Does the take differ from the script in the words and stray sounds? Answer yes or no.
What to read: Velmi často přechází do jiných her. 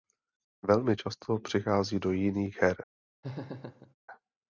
yes